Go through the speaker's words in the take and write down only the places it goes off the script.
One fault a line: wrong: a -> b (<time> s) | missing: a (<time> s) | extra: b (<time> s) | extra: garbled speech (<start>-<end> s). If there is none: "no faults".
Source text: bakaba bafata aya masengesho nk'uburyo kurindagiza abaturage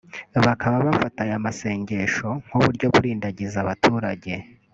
no faults